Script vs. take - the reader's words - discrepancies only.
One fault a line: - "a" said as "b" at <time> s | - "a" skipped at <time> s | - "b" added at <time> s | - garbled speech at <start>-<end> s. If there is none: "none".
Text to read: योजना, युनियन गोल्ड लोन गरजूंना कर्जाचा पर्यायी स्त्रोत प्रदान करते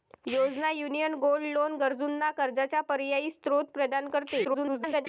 - garbled speech at 4.4-5.1 s